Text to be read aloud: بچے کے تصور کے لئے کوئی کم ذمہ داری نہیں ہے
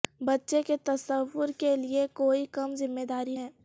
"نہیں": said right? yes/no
no